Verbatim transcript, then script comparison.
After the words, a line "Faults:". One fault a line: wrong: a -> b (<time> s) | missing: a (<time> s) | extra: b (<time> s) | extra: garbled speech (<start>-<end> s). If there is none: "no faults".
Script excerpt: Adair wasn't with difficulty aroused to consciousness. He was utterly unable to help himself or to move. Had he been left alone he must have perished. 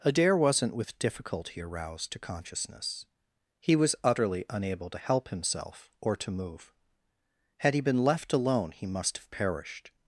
Adair wasn't with difficulty aroused to consciousness. He was utterly unable to help himself or to move. Had he been left alone he must have perished.
Faults:
no faults